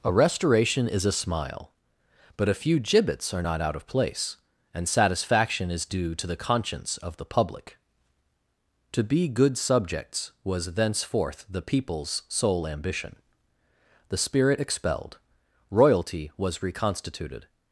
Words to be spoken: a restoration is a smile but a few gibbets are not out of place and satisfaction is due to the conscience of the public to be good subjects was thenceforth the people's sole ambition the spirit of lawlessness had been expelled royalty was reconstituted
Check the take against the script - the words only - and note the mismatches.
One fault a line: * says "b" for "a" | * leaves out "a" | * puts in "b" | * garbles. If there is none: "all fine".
* leaves out "of lawlessness had been"